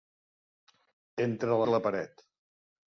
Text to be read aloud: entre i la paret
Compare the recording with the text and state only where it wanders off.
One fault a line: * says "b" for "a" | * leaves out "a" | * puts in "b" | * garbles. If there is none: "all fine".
all fine